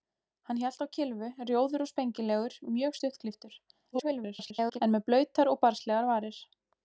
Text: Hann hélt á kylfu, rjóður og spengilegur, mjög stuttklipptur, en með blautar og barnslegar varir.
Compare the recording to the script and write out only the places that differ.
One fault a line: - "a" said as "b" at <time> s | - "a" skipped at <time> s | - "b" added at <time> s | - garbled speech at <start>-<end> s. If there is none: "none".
- garbled speech at 3.9-4.8 s